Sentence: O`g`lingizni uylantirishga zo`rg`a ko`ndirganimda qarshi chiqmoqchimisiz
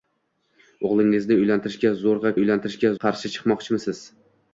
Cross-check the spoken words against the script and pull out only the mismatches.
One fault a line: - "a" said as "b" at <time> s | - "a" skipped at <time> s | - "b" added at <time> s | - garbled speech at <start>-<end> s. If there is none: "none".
- "ko`ndirganimda" said as "uylantirishga" at 2.4 s